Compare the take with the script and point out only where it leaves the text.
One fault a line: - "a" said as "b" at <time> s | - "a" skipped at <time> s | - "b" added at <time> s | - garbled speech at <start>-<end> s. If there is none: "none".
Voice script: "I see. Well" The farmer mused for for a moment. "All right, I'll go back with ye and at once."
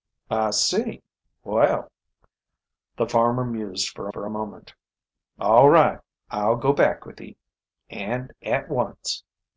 none